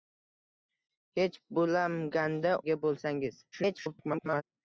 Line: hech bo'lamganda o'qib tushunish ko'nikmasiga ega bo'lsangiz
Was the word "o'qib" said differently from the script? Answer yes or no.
yes